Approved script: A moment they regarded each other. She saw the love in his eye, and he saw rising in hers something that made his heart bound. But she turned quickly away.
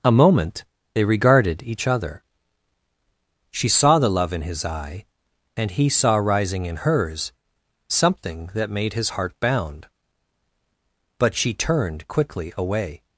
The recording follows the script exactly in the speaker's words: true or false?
true